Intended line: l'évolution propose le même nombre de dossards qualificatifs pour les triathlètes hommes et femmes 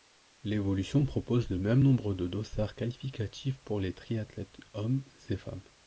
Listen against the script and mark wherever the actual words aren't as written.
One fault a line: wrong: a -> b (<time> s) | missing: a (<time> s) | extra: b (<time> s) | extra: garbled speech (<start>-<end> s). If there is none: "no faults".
no faults